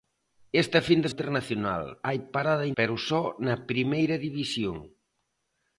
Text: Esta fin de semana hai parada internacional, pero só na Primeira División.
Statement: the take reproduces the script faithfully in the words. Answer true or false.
false